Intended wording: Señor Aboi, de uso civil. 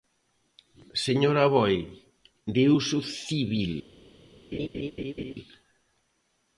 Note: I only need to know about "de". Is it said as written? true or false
true